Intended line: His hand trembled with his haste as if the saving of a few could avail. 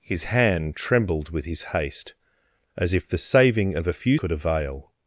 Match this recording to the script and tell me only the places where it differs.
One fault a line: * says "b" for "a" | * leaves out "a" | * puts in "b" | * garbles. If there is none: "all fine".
all fine